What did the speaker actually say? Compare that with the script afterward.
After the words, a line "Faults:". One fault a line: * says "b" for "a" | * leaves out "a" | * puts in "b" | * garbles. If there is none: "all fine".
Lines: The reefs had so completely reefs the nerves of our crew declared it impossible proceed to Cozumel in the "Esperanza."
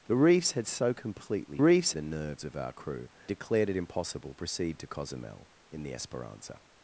The reefs had so completely reefs the nerves of our crew declared it impossible proceed to Cozumel in the "Esperanza."
Faults:
all fine